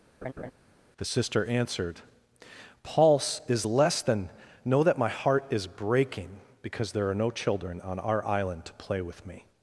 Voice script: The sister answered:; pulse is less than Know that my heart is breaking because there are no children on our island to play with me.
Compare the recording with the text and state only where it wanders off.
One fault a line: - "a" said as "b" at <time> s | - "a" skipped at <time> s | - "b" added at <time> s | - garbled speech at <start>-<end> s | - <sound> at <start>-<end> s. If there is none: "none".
- laugh at 0.2-0.5 s